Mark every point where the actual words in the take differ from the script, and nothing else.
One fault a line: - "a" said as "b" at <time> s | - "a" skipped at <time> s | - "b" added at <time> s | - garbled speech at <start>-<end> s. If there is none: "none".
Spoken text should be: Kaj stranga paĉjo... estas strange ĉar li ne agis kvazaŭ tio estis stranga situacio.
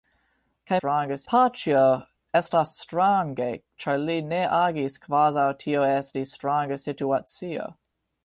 none